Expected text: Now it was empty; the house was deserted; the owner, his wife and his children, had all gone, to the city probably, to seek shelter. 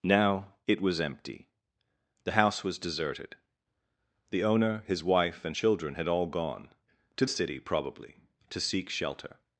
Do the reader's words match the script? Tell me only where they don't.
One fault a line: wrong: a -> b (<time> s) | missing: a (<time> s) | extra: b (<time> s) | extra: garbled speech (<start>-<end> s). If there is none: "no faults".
missing: his (5.5 s)
missing: the (7.2 s)